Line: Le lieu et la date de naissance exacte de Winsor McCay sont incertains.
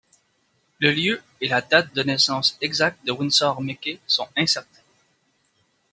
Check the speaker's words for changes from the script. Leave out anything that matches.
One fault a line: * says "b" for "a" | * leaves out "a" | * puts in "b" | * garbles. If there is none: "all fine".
all fine